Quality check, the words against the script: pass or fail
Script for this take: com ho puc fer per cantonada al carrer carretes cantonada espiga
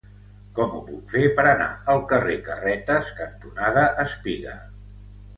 fail